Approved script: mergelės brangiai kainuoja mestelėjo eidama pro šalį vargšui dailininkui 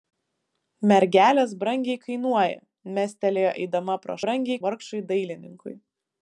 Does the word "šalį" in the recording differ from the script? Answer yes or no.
yes